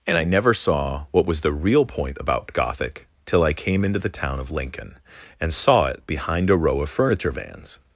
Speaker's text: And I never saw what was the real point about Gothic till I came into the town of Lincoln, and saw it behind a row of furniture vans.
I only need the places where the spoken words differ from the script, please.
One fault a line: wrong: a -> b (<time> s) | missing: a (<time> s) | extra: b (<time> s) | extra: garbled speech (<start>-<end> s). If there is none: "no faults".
no faults